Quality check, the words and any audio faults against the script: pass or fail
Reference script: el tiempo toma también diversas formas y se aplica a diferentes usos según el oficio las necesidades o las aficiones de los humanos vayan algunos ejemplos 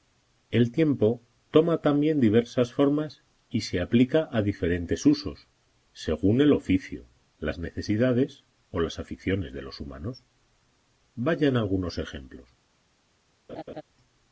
fail